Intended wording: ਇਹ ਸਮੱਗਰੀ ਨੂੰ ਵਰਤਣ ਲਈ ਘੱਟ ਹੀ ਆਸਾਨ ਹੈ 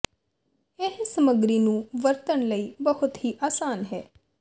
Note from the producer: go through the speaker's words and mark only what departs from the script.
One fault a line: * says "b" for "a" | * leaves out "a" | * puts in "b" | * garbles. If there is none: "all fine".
* says "ਬਹੁਤ" for "ਘੱਟ"